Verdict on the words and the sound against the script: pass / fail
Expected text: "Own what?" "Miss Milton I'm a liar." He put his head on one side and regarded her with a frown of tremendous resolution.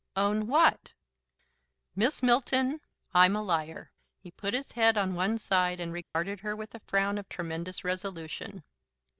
fail